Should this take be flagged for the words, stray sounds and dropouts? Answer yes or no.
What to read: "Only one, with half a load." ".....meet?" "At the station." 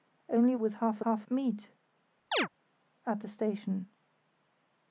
yes